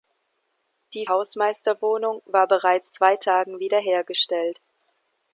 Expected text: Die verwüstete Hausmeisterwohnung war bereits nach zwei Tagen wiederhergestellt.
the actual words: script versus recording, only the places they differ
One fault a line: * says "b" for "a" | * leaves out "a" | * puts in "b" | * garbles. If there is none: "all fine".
* leaves out "verwüstete"
* leaves out "nach"